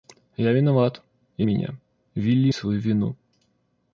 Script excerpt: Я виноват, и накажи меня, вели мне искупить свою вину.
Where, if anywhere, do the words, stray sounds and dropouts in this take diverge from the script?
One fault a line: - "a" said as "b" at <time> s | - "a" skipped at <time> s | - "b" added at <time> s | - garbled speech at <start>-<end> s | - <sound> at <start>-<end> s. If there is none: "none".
- "накажи" skipped at 1.5 s
- "мне искупить" skipped at 2.5 s